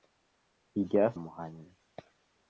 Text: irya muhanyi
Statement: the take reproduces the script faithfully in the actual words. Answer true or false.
true